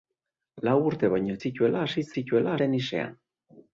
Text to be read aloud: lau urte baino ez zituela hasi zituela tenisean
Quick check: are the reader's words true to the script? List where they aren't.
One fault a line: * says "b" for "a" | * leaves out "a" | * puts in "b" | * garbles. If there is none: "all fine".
all fine